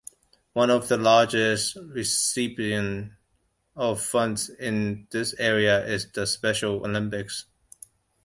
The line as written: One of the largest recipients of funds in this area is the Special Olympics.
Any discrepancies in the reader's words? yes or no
no